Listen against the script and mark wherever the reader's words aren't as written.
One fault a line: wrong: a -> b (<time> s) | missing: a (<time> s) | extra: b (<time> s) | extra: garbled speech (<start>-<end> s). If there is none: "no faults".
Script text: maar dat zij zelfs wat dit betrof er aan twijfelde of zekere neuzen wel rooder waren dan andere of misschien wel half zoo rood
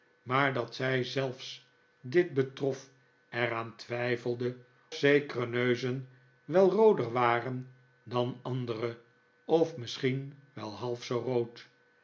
missing: wat (1.7 s)
missing: of (4.6 s)